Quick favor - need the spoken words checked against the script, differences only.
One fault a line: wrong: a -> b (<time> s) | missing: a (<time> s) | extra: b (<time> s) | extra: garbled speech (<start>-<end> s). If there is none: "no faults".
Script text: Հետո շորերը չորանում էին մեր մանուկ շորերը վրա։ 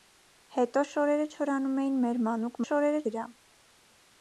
no faults